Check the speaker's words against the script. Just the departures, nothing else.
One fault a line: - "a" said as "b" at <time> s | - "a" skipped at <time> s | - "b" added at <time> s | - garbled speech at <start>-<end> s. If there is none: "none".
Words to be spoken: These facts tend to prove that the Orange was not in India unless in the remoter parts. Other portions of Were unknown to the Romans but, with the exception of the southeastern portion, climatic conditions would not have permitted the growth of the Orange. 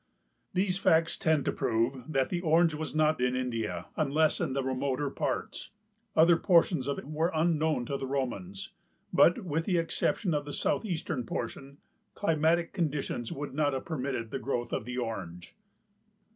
none